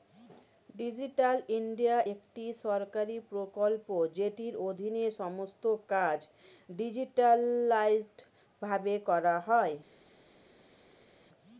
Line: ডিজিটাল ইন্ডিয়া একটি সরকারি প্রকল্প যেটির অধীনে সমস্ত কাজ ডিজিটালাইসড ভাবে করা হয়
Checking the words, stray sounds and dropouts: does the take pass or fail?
pass